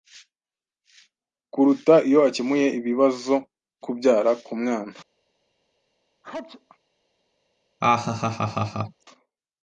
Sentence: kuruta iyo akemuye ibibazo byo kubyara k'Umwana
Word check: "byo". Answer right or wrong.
wrong